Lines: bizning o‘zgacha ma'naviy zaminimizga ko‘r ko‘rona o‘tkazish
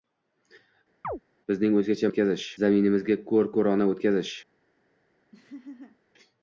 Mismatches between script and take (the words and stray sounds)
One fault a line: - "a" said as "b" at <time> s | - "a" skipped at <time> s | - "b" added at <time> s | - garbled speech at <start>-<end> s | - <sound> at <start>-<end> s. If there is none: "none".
- chirp at 1.0-1.2 s
- "ma'naviy" said as "o‘tkazish" at 2.1 s
- laugh at 5.3-6.0 s